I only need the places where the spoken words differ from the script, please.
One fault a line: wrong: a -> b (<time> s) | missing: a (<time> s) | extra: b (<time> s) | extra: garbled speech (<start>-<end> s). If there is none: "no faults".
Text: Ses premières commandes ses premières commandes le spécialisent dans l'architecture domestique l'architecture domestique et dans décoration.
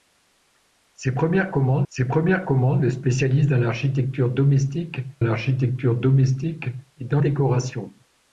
no faults